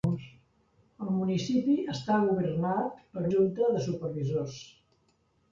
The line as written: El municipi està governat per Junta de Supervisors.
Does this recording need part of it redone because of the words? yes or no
no